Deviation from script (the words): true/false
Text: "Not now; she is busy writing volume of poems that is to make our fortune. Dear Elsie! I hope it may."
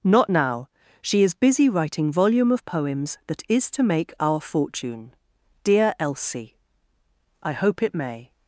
false